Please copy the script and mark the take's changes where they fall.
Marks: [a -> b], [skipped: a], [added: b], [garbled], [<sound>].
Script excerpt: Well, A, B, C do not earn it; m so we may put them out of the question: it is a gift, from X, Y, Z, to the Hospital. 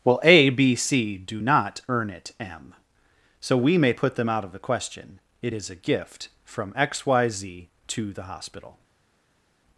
Well, A, B, C do not earn it; m so we may put them out of the question: it is a gift, from X, Y, Z, to the Hospital.